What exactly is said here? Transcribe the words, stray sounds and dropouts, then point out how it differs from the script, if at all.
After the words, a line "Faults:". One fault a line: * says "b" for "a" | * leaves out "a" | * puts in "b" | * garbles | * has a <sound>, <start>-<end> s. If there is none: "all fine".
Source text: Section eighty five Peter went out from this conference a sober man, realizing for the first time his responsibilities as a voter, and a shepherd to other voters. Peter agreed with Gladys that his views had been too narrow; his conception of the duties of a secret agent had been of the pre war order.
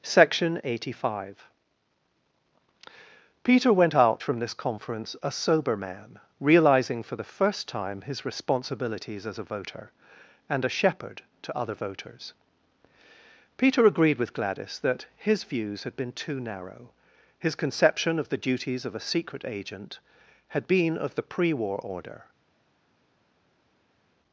Section eighty five Peter went out from this conference a sober man, realizing for the first time his responsibilities as a voter, and a shepherd to other voters. Peter agreed with Gladys that his views had been too narrow; his conception of the duties of a secret agent had been of the pre war order.
Faults:
all fine